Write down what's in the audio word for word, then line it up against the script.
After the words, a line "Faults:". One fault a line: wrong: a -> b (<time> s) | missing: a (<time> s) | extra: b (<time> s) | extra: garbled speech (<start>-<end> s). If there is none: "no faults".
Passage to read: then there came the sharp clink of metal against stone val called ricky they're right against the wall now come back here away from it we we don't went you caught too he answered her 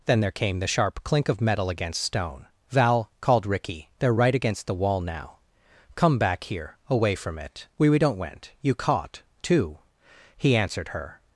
then there came the sharp clink of metal against stone val called ricky they're right against the wall now come back here away from it we we don't went you caught too he answered her
Faults:
no faults